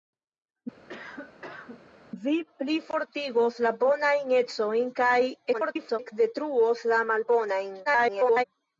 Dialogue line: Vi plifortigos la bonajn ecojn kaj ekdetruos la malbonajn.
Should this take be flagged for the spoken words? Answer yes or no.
yes